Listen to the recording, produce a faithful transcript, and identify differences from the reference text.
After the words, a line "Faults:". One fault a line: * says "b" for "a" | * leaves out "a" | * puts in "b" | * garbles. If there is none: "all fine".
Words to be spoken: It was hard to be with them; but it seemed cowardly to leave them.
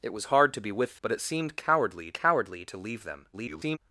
It was hard to be with; but it seemed cowardly cowardly to leave them. [garbled]
Faults:
* leaves out "them"
* puts in "cowardly"
* garbles